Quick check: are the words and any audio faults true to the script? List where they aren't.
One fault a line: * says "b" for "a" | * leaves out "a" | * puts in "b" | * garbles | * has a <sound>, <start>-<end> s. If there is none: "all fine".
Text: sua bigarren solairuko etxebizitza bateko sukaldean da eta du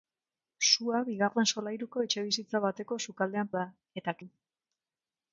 all fine